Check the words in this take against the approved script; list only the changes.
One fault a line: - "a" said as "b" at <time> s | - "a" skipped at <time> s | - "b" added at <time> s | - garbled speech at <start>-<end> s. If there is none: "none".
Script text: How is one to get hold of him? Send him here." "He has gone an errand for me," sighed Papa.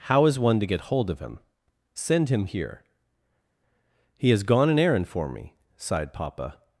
none